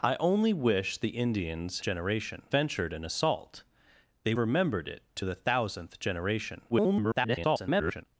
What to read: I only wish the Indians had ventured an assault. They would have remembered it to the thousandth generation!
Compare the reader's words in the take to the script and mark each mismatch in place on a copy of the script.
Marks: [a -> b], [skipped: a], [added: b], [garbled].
I only wish the Indians [had -> generation] ventured an assault. They [skipped: would have] remembered it to the thousandth generation! [garbled]